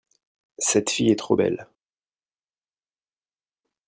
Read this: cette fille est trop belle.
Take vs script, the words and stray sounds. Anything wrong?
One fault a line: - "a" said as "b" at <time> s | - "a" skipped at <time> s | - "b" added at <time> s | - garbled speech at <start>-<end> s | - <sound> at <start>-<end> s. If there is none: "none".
none